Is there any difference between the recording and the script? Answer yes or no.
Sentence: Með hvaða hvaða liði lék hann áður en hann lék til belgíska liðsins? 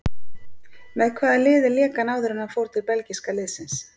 yes